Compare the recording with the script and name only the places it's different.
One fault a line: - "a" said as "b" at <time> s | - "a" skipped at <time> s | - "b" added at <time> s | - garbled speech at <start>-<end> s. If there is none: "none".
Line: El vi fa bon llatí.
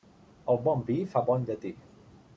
- "bon" added at 0.7 s